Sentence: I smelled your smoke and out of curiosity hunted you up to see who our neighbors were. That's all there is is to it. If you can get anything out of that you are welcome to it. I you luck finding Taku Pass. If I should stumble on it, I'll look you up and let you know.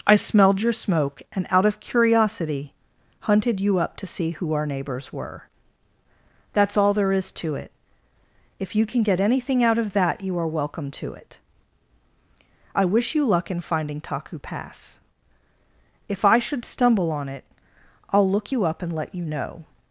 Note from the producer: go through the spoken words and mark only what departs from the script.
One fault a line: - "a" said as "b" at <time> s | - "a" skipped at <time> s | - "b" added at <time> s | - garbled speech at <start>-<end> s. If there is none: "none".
- "is" skipped at 7.3 s
- "wish" added at 12.8 s
- "in" added at 13.5 s